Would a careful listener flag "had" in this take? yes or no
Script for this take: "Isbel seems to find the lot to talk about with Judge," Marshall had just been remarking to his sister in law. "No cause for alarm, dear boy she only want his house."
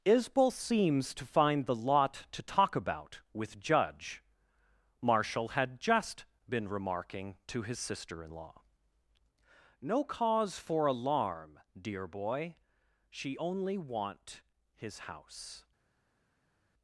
no